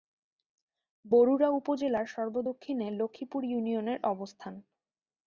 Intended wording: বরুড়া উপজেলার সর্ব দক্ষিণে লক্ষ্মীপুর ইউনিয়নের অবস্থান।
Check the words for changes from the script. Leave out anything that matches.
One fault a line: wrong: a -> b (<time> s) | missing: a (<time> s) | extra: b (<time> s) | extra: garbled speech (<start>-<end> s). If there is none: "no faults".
no faults